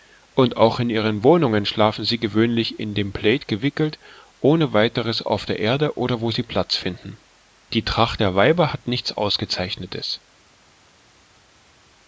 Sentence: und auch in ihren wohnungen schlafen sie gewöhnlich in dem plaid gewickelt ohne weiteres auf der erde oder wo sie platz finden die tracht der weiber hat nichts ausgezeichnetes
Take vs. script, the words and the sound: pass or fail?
pass